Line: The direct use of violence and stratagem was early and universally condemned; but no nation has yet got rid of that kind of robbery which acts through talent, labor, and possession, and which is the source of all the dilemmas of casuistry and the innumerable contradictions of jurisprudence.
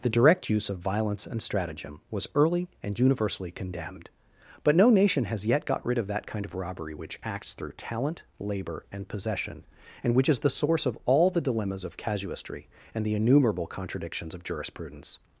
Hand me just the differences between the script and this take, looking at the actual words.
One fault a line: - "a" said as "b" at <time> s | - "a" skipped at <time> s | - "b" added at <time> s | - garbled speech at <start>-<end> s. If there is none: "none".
none